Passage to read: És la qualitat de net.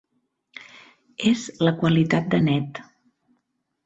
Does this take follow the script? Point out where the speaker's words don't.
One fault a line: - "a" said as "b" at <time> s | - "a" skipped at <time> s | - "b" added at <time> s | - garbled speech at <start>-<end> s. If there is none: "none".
none